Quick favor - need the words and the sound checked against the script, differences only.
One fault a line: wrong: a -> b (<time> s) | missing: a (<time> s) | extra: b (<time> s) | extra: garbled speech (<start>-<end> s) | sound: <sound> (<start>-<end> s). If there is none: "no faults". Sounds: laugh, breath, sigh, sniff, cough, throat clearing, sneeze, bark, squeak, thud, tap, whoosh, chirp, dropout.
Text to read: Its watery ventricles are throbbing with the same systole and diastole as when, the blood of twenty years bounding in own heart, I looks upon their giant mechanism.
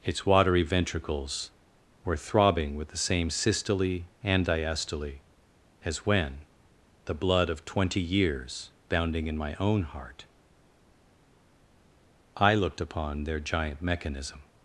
wrong: are -> were (2.0 s)
extra: my (9.4 s)
wrong: looks -> looked (12.5 s)